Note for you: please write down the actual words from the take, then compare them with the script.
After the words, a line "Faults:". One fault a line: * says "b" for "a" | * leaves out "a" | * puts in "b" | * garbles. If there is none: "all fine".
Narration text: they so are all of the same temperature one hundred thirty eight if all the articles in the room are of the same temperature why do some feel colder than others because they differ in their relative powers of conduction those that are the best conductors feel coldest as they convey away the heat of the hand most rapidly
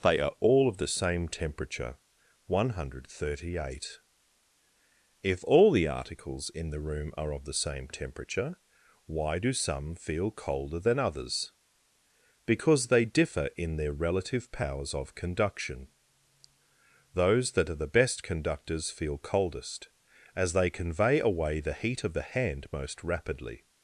they are all of the same temperature one hundred thirty eight if all the articles in the room are of the same temperature why do some feel colder than others because they differ in their relative powers of conduction those that are the best conductors feel coldest as they convey away the heat of the hand most rapidly
Faults:
* leaves out "so"